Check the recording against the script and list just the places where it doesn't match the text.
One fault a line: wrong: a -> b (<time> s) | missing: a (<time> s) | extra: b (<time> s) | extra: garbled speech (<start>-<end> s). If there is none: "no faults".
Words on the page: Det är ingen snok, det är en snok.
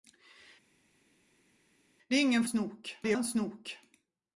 no faults